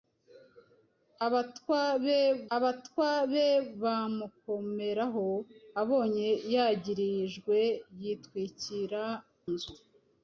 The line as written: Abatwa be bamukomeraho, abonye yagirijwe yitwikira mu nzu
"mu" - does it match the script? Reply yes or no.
no